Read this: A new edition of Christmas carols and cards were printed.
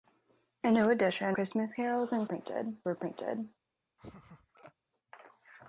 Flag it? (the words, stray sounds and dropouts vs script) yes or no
yes